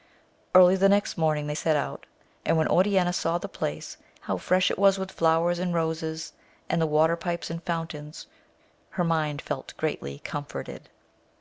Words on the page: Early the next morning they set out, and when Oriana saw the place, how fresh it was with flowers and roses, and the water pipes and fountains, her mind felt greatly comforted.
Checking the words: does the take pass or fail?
pass